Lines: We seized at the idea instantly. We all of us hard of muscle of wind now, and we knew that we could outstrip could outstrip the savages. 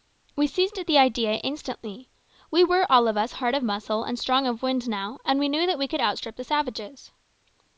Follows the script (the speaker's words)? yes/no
no